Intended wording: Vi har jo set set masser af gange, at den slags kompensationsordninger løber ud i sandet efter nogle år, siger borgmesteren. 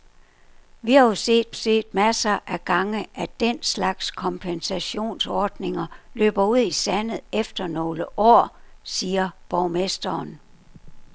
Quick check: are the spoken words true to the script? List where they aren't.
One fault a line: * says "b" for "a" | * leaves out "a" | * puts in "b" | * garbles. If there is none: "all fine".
all fine